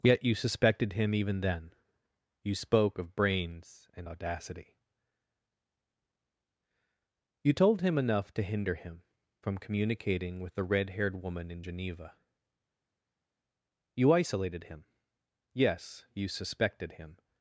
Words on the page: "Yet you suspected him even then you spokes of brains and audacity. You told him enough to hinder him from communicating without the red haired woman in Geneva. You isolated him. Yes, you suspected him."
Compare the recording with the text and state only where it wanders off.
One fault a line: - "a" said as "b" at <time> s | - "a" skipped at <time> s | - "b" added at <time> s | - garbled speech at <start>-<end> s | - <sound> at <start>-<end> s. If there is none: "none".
- "spokes" said as "spoke" at 2.5 s
- "without" said as "with" at 10.4 s